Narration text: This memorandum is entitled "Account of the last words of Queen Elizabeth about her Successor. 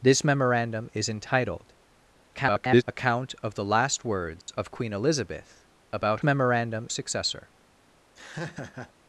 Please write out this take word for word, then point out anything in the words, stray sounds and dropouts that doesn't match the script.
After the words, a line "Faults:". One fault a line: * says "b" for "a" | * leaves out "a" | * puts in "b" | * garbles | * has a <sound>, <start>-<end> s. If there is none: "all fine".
This memorandum is entitled [garbled] "Account of the last words of Queen Elizabeth about memorandum Successor.
Faults:
* garbles
* has a dropout, 4.4-4.5 s
* says "memorandum" for "her"
* has a laugh, 8.2-8.9 s